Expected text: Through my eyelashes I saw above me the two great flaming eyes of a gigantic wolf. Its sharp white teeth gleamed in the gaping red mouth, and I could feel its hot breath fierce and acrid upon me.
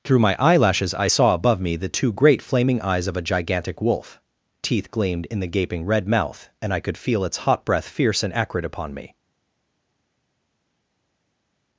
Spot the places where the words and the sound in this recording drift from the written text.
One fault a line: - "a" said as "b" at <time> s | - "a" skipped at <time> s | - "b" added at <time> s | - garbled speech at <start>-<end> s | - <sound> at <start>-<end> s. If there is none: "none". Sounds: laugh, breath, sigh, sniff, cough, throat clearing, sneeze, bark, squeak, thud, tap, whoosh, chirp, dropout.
- "Its sharp white" skipped at 4.2 s